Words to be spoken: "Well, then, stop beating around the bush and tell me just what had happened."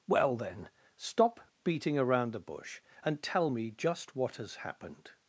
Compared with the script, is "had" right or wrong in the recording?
wrong